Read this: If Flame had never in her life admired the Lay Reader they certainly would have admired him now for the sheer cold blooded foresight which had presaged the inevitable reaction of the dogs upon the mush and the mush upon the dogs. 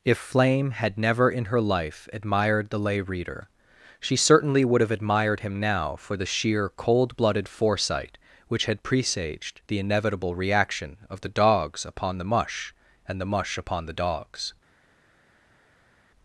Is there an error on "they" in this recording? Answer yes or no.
yes